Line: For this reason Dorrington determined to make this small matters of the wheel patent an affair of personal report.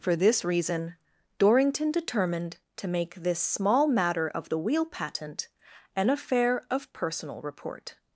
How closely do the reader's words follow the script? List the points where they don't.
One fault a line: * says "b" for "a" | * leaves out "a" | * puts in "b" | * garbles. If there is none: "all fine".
* says "matter" for "matters"